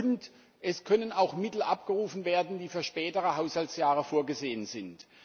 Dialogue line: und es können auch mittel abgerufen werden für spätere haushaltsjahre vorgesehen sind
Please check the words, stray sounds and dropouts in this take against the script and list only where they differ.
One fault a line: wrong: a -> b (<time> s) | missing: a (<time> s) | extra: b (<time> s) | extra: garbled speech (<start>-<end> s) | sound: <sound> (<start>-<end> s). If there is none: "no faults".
extra: die (2.6 s)